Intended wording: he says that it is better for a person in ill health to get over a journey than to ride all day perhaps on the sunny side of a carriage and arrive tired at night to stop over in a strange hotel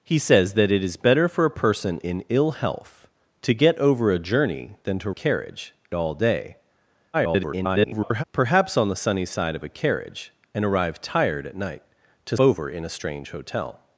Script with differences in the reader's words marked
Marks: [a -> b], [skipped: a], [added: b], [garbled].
he says that it is better for a person in ill health to get over a journey than to [ride -> carriage] all day [garbled] perhaps on the sunny side of a carriage and arrive tired at night to [skipped: stop] over in a strange hotel